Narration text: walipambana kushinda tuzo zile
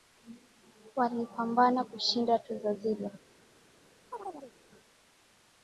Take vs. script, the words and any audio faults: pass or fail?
fail